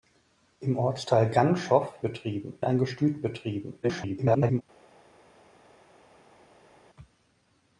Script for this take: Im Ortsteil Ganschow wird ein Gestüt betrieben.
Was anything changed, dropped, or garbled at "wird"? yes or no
yes